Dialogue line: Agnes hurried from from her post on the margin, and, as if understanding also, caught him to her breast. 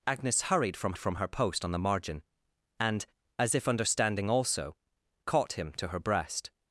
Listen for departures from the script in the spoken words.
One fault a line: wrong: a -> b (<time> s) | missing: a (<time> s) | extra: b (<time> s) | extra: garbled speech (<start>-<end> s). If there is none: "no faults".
no faults